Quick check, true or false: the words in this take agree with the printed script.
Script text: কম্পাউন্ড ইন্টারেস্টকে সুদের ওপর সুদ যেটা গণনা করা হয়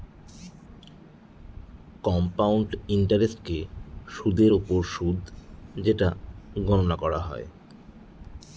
true